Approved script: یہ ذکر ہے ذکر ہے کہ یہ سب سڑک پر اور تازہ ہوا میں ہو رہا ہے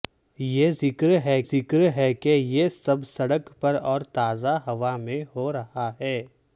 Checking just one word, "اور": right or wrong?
right